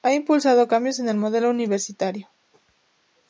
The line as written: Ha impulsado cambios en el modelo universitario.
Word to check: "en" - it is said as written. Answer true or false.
true